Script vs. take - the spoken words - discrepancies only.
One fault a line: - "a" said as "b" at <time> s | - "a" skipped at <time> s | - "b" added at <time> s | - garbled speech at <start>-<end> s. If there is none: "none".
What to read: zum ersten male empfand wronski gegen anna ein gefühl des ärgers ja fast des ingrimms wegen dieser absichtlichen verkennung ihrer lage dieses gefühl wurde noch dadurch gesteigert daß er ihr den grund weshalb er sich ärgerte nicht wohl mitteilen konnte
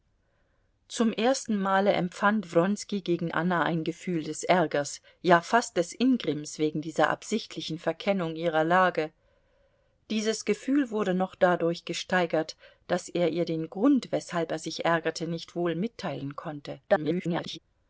- garbled speech at 16.9-17.6 s